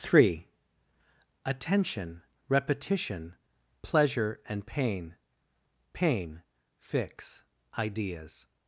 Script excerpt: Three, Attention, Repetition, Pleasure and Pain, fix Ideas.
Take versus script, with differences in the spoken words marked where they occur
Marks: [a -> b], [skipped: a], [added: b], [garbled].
Three, Attention, Repetition, Pleasure and Pain, [added: Pain] fix Ideas.